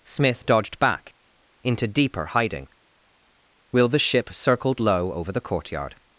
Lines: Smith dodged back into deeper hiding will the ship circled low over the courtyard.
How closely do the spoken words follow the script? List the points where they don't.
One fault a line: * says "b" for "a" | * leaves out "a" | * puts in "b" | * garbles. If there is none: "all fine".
all fine